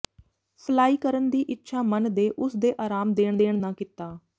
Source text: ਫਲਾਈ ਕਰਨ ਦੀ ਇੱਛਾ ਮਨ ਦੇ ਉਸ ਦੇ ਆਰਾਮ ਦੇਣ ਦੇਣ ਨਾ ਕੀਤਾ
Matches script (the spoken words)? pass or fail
pass